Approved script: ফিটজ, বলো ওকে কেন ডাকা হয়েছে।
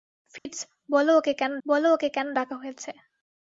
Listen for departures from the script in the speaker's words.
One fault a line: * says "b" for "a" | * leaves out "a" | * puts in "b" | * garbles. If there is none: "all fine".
* puts in "বলো ওকে কেন"